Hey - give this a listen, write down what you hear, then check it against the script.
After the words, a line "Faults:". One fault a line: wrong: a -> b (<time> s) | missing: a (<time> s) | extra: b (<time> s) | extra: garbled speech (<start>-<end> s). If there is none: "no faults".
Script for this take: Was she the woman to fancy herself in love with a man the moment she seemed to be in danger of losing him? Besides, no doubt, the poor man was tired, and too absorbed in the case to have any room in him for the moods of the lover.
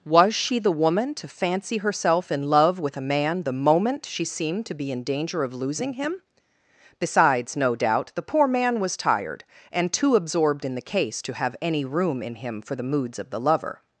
Was she the woman to fancy herself in love with a man the moment she seemed to be in danger of losing him? Besides, no doubt, the poor man was tired, and too absorbed in the case to have any room in him for the moods of the lover.
Faults:
no faults